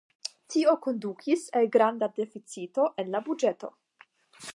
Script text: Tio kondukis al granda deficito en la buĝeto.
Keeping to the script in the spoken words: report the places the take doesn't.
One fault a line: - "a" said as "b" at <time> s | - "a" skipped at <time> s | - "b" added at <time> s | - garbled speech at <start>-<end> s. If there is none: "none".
none